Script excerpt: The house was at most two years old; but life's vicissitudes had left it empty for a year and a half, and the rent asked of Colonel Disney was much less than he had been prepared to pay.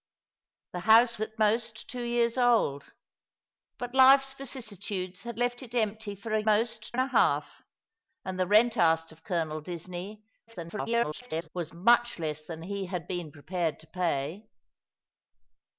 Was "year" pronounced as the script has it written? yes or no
no